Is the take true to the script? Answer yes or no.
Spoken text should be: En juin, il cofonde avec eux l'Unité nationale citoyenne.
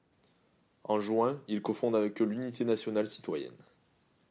yes